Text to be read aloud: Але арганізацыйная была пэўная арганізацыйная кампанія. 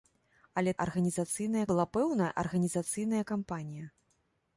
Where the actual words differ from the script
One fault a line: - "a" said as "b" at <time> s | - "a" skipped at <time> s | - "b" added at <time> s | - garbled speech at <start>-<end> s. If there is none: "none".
none